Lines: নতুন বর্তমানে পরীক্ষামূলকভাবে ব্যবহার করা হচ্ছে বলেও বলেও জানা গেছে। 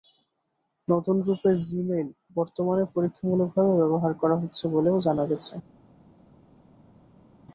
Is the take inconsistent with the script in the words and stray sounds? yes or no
yes